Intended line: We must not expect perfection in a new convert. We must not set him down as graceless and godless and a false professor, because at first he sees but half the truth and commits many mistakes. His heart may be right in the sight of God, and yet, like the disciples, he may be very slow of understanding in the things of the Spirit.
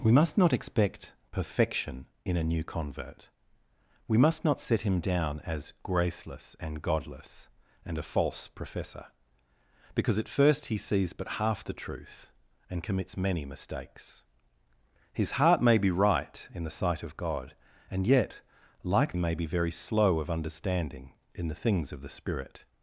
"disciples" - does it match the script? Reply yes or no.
no